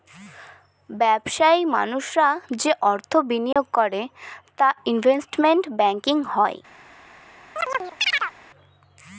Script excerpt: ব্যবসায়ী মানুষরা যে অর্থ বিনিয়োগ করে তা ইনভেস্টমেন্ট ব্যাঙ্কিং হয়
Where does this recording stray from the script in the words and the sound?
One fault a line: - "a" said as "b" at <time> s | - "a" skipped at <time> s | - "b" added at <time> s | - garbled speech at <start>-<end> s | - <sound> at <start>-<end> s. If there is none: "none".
- dropout at 3.5-3.6 s
- chirp at 7.6-8.3 s